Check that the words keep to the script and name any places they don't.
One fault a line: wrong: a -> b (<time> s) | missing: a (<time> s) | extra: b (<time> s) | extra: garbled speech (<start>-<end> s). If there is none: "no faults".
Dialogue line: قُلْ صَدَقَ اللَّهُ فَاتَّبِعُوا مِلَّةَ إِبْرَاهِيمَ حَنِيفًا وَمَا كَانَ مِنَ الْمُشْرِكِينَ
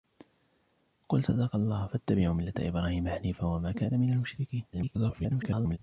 extra: garbled speech (4.7-5.8 s)